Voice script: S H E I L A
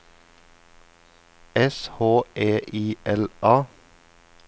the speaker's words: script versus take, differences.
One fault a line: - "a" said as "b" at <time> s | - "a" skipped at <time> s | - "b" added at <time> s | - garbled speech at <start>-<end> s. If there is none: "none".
none